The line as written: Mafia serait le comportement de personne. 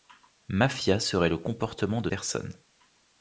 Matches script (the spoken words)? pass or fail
pass